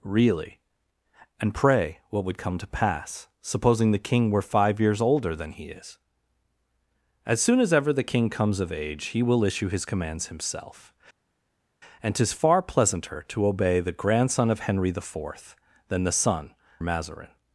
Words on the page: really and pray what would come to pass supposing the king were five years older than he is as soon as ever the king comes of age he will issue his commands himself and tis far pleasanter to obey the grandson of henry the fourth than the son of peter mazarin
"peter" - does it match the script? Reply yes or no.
no